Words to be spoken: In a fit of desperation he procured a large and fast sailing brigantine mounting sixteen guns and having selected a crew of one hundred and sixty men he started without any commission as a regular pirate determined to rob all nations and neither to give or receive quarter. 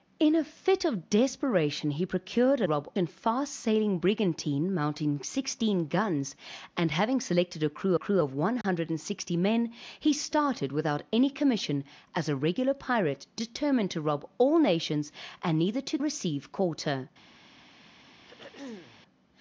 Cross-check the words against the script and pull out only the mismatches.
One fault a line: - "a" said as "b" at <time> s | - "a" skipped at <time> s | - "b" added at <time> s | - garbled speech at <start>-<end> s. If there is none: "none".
- "large" said as "rob" at 2.6 s
- "crew" added at 8.0 s
- "give or" skipped at 16.0 s